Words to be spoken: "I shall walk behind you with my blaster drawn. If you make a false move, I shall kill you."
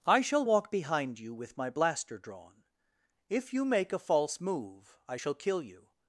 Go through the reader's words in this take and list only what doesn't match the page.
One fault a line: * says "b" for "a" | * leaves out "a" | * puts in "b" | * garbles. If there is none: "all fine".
all fine